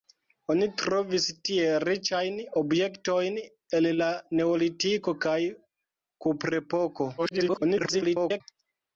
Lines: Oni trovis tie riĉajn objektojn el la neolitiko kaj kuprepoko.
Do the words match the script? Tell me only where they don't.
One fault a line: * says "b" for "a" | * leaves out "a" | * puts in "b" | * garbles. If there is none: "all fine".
* garbles